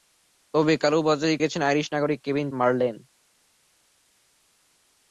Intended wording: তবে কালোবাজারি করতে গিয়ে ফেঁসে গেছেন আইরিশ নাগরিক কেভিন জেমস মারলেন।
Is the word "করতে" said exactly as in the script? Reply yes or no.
no